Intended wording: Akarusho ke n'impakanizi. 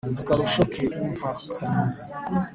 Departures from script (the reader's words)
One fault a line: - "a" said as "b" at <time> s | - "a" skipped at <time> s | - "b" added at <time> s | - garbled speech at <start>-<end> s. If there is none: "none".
none